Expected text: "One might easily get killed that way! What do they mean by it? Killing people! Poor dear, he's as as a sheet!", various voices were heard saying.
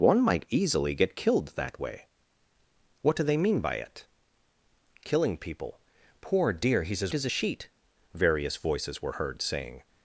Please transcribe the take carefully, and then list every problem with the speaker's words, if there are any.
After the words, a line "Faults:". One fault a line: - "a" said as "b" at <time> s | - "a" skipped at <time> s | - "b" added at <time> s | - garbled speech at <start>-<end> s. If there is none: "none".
"One might easily get killed that way! What do they mean by it? Killing people! Poor dear, he's as as a sheet!", various voices were heard saying.
Faults:
none